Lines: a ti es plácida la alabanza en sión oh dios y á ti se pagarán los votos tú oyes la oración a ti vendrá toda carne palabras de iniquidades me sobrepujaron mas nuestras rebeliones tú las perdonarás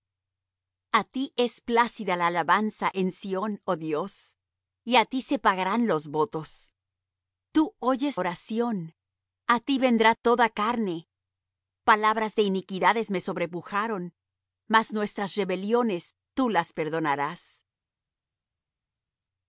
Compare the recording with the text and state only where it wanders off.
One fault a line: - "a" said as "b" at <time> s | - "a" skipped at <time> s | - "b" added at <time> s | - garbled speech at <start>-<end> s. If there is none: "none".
- "la" skipped at 8.2 s